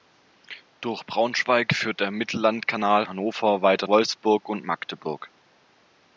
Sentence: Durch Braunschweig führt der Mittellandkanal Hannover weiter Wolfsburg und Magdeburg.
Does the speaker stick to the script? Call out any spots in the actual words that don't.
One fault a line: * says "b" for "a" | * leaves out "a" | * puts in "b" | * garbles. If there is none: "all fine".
all fine